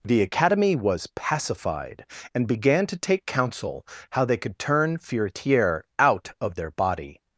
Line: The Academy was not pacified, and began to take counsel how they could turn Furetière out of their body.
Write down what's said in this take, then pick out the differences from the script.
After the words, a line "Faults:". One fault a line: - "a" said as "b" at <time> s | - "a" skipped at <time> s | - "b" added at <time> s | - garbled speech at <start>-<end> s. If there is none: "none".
The Academy was pacified, and began to take counsel how they could turn Furetière out of their body.
Faults:
- "not" skipped at 1.1 s